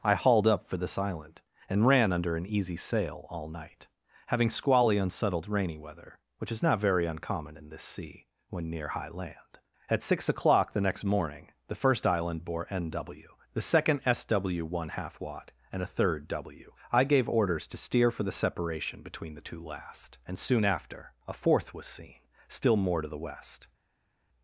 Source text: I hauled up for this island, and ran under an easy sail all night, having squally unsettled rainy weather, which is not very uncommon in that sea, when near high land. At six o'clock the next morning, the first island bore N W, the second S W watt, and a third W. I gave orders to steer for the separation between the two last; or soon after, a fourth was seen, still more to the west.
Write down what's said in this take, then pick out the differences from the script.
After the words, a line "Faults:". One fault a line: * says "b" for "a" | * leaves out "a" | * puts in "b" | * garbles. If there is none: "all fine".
I hauled up for this island, and ran under an easy sail all night, having squally unsettled rainy weather, which is not very uncommon in this sea, when near high land. At six o'clock the next morning, the first island bore N W, the second S W one half watt, and a third W. I gave orders to steer for the separation between the two last; and soon after, a fourth was seen, still more to the west.
Faults:
* says "this" for "that"
* puts in "one half"
* says "and" for "or"